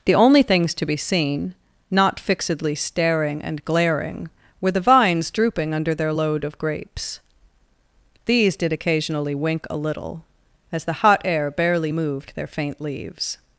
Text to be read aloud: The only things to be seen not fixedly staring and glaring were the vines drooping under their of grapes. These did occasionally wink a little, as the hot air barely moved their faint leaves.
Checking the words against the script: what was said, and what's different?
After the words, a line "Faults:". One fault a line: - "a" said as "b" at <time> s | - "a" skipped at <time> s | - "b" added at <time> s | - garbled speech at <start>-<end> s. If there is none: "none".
The only things to be seen not fixedly staring and glaring were the vines drooping under their load of grapes. These did occasionally wink a little, as the hot air barely moved their faint leaves.
Faults:
- "load" added at 6.1 s